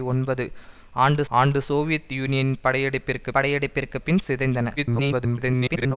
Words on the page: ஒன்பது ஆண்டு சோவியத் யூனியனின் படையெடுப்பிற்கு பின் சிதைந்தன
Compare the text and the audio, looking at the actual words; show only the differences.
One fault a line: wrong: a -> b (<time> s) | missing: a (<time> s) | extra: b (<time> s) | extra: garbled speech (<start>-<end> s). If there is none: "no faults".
extra: ஆண்டு (1.3 s)
extra: படையெடுப்பிற்கு (3.3 s)
extra: garbled speech (4.8-6.0 s)